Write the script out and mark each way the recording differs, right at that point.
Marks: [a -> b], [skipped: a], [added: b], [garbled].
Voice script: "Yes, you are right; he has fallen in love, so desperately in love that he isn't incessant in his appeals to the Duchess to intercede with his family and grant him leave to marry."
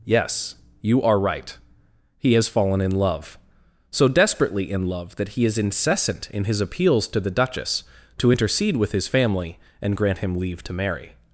"Yes, you are right; he has fallen in love, so desperately in love that he [isn't -> is] incessant in his appeals to the Duchess to intercede with his family and grant him leave to marry."